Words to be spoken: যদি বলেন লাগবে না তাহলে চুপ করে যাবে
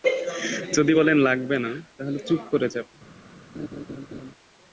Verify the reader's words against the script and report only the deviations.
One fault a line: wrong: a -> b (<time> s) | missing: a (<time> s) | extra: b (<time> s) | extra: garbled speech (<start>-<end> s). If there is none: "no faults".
no faults